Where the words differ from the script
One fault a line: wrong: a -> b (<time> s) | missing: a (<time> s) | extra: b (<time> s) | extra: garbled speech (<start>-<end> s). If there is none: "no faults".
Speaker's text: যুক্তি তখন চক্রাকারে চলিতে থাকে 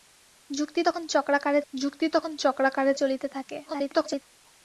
extra: যুক্তি তখন চক্রাকারে (1.7 s)
extra: garbled speech (3.7-4.2 s)